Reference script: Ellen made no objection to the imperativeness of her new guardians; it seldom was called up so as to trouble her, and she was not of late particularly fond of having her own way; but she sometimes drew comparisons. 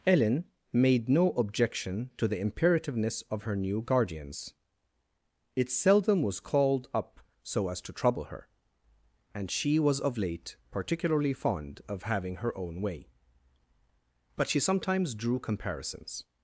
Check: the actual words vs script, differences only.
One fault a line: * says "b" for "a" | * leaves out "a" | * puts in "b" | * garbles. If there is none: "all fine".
* leaves out "not"